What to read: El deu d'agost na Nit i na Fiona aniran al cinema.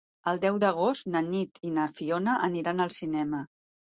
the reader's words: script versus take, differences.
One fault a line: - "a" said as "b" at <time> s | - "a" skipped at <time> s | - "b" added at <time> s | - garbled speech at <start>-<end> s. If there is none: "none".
none